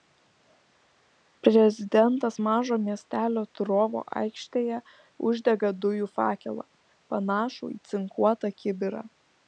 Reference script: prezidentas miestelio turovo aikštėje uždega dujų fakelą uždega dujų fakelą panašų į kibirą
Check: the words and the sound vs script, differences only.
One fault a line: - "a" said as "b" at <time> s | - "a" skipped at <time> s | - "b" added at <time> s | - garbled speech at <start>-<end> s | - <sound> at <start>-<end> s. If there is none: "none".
- "mažo" added at 2.5 s
- "uždega dujų fakelą" skipped at 6.7 s
- "cinkuotą" added at 7.9 s